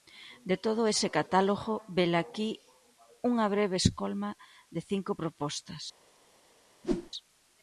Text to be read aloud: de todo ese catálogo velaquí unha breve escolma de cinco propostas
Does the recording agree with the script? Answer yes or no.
yes